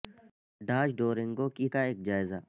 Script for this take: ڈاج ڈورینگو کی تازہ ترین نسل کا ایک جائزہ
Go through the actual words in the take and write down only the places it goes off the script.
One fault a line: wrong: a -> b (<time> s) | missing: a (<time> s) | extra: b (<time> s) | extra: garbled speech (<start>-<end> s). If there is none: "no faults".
missing: تازہ ترین نسل (1.6 s)